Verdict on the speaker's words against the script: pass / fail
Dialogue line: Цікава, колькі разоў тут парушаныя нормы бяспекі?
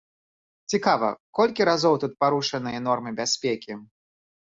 pass